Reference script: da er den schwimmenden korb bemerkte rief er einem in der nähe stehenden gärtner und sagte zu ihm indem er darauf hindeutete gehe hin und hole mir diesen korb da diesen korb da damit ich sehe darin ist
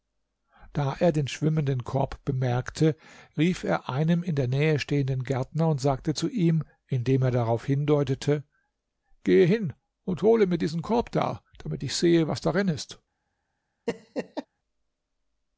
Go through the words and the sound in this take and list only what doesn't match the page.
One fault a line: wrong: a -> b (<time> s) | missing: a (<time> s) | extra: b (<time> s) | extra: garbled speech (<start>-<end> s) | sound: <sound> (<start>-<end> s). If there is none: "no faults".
missing: diesen korb da (11.4 s)
extra: was (12.3 s)
sound: laugh (13.9-14.5 s)